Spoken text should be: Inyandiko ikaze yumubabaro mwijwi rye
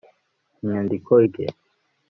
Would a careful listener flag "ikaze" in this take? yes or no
yes